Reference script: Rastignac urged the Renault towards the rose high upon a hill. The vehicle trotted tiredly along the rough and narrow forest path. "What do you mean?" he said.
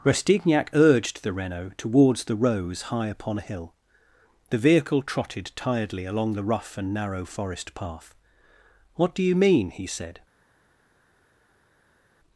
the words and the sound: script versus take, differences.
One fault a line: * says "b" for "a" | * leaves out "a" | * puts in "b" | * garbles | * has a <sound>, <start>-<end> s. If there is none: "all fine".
all fine